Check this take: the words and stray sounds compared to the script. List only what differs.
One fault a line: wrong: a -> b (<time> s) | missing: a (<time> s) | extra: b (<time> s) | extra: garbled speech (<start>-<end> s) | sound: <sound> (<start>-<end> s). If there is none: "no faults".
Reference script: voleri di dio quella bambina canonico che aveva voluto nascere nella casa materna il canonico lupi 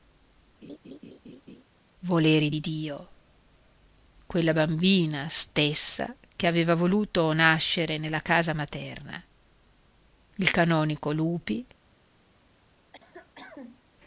sound: laugh (0.6-1.6 s)
wrong: canonico -> stessa (5.3 s)
sound: cough (12.9-13.8 s)